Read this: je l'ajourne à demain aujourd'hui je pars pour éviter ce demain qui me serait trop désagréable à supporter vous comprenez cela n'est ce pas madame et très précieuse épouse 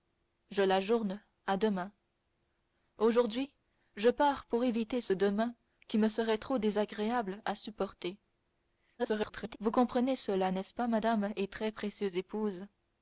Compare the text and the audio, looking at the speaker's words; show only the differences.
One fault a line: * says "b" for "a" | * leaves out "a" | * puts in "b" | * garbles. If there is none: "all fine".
* garbles